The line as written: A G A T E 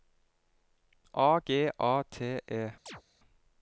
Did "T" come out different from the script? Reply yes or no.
no